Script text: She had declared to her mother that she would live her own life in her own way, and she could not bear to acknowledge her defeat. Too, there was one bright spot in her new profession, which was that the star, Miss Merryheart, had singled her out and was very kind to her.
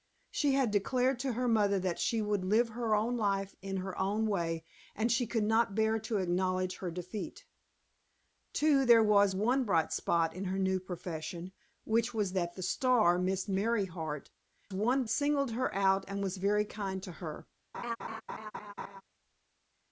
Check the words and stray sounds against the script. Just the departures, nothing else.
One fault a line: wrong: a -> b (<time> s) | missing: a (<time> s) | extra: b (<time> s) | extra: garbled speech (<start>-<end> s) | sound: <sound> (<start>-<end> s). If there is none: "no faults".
wrong: had -> one (14.7 s)
sound: laugh (17.7-19.0 s)